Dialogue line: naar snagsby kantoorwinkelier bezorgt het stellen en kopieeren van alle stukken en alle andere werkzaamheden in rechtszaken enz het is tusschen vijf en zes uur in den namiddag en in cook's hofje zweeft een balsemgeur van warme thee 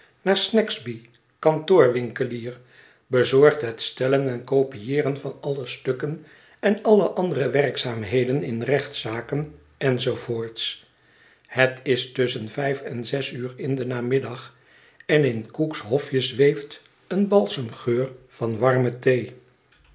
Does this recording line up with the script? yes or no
yes